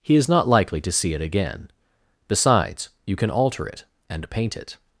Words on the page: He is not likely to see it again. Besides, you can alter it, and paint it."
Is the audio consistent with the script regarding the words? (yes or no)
yes